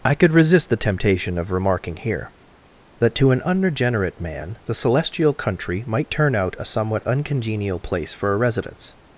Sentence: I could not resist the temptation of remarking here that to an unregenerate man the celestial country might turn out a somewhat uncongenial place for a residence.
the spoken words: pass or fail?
fail